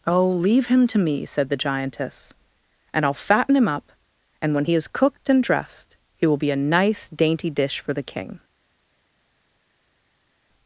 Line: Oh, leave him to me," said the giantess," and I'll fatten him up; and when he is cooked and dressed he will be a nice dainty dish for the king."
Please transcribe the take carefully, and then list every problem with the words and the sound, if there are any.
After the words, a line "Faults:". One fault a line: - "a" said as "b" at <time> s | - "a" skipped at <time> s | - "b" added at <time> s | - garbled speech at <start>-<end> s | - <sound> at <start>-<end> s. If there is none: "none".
Oh, leave him to me," said the giantess," and I'll fatten him up; and when he is cooked and dressed he will be a nice dainty dish for the king."
Faults:
none